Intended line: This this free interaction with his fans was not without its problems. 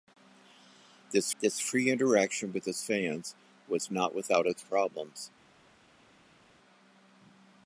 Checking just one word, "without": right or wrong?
right